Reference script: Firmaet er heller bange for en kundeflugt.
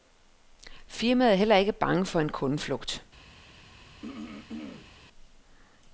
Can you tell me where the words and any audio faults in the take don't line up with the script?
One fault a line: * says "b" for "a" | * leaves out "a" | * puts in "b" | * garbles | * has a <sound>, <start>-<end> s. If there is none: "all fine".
* puts in "ikke"
* has a throat clearing, 4.0-4.9 s